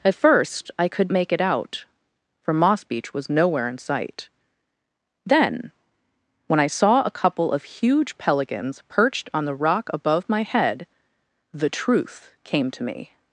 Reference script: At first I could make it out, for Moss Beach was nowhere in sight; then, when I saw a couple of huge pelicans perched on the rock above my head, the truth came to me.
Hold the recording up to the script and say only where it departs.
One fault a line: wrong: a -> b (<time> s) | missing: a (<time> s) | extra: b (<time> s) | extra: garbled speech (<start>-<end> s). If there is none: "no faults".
no faults